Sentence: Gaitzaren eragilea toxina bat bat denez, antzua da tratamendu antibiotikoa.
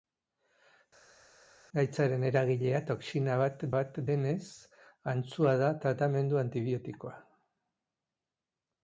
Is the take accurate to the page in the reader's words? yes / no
yes